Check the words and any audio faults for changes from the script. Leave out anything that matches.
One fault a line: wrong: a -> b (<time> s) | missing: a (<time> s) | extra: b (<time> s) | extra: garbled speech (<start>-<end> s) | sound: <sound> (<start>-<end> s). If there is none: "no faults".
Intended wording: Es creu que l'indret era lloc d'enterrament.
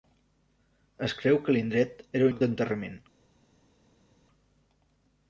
no faults